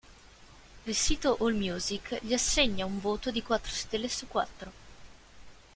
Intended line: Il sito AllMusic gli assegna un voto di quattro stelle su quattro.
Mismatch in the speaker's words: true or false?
false